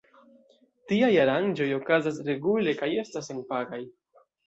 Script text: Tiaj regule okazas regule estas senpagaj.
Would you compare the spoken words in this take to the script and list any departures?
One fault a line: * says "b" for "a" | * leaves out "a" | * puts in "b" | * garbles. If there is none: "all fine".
* says "aranĝoj" for "regule"
* puts in "kaj"